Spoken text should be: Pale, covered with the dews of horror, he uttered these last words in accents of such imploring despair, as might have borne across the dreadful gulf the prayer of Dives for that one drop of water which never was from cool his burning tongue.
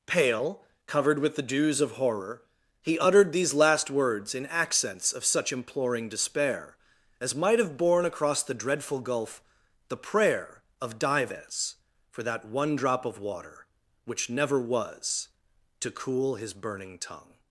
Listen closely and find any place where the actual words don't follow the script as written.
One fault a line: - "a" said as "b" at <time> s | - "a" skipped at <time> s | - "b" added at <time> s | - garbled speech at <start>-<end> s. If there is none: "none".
- "from" said as "to" at 15.8 s